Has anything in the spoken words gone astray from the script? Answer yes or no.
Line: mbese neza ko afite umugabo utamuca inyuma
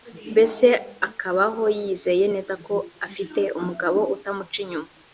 yes